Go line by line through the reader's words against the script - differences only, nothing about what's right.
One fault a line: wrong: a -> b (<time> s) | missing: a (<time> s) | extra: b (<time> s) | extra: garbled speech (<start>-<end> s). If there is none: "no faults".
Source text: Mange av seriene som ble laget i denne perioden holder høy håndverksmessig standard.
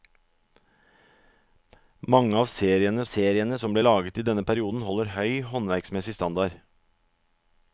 extra: seriene (3.1 s)